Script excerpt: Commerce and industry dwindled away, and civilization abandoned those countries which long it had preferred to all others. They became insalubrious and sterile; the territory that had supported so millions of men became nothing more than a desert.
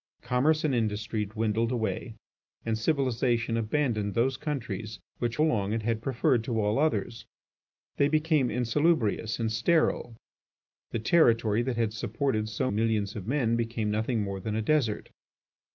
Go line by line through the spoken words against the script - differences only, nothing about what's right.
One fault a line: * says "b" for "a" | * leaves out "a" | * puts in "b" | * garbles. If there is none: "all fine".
all fine